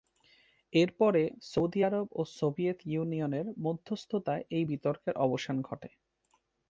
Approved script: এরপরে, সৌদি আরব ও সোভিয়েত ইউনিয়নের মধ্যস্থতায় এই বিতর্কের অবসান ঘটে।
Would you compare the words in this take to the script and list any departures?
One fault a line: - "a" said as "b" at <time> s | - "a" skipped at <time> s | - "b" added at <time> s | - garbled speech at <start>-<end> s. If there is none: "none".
none